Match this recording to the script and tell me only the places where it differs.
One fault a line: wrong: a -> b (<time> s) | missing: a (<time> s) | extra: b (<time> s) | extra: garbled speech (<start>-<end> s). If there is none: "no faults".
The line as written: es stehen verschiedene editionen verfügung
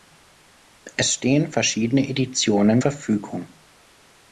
no faults